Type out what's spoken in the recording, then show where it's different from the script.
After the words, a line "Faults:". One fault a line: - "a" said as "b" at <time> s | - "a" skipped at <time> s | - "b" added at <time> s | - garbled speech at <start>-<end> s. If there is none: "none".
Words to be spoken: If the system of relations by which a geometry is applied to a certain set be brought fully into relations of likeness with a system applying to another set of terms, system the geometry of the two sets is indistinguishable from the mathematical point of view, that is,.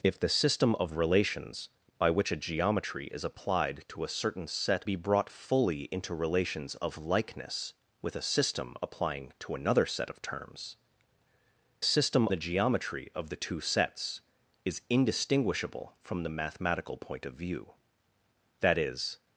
If the system of relations by which a geometry is applied to a certain set be brought fully into relations of likeness with a system applying to another set of terms, system the geometry of the two sets is indistinguishable from the mathematical point of view, that is,.
Faults:
none